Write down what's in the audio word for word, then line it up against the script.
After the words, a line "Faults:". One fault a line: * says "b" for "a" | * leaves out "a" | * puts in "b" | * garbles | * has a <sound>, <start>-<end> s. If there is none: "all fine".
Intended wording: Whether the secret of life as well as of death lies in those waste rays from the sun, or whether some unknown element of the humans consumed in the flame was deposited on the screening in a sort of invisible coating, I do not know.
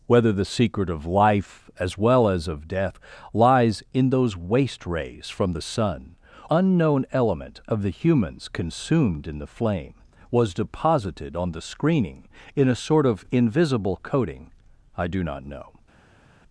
Whether the secret of life as well as of death lies in those waste rays from the sun, unknown element of the humans consumed in the flame was deposited on the screening in a sort of invisible coating, I do not know.
Faults:
* leaves out "or whether some"